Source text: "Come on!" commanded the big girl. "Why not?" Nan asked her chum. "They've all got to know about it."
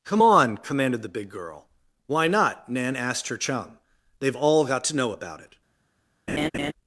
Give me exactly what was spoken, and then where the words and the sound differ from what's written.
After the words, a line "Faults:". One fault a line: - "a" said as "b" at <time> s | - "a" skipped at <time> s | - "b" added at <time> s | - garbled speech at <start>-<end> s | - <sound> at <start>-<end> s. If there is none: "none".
"Come on!" commanded the big girl. "Why not?" Nan asked her chum. "They've all got to know about it."
Faults:
- laugh at 6.3-6.7 s